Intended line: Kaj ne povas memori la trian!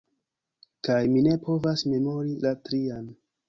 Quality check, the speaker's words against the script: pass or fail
fail